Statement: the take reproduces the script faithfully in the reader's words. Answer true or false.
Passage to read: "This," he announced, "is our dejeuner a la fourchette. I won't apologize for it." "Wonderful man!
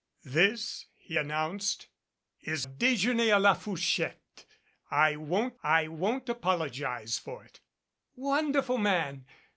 false